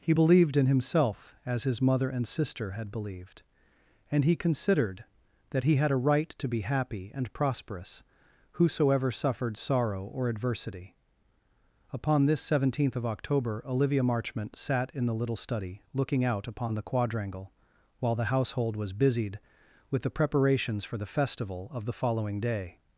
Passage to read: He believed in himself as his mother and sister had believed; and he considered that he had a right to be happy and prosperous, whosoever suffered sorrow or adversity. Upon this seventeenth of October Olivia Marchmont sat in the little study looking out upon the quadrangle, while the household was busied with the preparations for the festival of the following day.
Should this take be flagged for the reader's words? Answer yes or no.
no